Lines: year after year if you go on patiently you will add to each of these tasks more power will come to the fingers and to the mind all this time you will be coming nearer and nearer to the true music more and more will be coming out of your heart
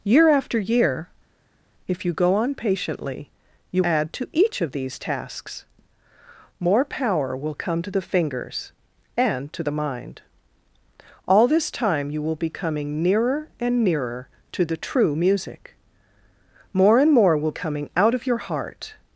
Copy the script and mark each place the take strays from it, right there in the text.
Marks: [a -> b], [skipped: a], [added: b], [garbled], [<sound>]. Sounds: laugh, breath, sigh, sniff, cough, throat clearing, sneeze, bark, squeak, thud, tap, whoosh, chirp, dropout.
year after year if you go on patiently you [skipped: will] add to each of these tasks more power will come to the fingers and to the mind all this time you will be coming nearer and nearer to the true music more and more will [skipped: be] coming out of your heart